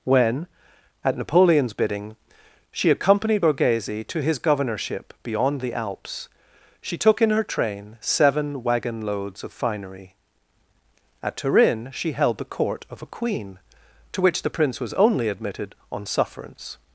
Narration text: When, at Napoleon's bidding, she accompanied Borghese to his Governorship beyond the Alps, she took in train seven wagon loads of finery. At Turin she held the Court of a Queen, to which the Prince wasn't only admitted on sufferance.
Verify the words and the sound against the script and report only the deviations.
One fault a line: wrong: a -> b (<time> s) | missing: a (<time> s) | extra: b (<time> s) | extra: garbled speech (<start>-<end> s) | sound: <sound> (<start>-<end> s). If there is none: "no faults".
extra: her (7.3 s)
wrong: wasn't -> was (14.8 s)